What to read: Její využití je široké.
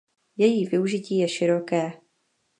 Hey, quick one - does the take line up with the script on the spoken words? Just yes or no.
yes